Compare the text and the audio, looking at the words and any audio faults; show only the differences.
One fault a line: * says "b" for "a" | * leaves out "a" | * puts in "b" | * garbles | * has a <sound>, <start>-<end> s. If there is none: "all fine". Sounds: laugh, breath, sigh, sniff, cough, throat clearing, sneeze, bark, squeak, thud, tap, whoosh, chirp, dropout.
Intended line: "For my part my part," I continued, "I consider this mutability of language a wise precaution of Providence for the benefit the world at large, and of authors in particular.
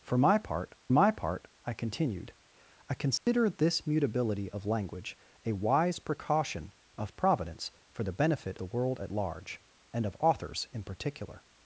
* has a dropout, 3.2-3.3 s